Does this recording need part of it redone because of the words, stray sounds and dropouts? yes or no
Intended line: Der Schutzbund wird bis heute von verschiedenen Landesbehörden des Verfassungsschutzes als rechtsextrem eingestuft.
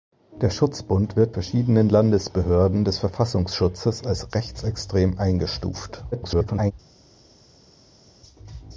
yes